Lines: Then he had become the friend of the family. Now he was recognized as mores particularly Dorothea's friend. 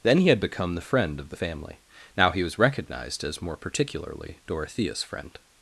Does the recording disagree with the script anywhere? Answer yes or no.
yes